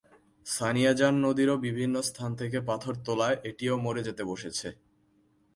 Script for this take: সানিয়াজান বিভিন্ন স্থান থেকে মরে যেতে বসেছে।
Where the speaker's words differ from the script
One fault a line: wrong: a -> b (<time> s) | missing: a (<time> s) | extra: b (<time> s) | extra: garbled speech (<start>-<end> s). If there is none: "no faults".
extra: নদীরও (1.2 s)
extra: পাথর তোলায় এটিও (2.7 s)